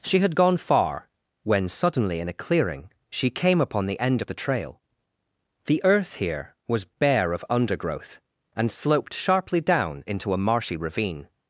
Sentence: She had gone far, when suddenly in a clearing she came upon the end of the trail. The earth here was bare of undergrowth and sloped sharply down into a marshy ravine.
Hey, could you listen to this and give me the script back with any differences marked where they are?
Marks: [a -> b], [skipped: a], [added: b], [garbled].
She had gone far, when suddenly in a clearing she came upon the end of the trail. The earth here was bare of undergrowth and sloped sharply down into a marshy ravine.